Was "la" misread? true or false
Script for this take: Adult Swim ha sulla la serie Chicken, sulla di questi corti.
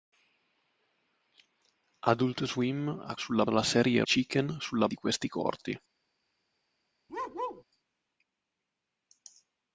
false